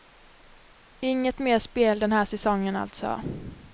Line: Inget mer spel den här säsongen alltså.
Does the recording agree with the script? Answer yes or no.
yes